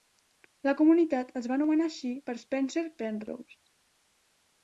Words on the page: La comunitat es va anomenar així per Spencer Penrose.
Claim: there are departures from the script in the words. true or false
false